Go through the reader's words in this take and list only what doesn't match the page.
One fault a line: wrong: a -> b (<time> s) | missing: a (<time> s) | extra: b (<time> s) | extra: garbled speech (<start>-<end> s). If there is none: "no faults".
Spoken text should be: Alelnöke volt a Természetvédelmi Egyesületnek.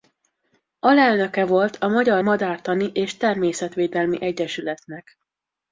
extra: Magyar Madártani és (1.9 s)